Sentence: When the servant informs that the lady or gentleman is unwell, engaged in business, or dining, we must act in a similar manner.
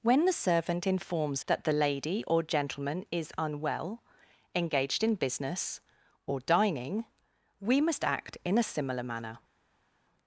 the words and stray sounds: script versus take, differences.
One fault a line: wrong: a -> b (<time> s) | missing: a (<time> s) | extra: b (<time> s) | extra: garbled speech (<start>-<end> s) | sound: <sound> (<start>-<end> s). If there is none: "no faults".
no faults